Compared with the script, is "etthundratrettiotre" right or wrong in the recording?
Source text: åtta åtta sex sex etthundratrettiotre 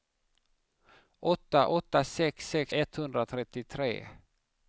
right